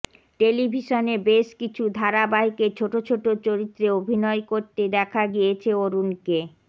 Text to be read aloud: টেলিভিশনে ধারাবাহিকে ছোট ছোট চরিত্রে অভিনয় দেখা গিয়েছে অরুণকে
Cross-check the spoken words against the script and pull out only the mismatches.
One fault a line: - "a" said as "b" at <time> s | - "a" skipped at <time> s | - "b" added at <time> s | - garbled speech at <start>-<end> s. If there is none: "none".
- "বেশ কিছু" added at 1.3 s
- "করতে" added at 4.5 s